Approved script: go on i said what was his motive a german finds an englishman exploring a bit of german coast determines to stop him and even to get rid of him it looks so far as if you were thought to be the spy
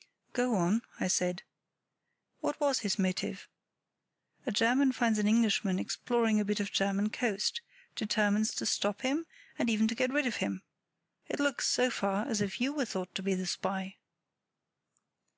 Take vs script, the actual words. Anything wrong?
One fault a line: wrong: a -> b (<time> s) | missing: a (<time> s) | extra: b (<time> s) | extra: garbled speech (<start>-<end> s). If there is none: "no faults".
no faults